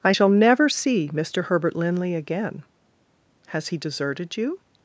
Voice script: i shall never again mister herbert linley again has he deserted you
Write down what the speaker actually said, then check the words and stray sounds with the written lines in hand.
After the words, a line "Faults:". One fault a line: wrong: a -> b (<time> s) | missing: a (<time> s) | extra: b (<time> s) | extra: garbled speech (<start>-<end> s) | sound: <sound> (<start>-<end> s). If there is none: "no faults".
i shall never see mister herbert linley again has he deserted you
Faults:
wrong: again -> see (0.7 s)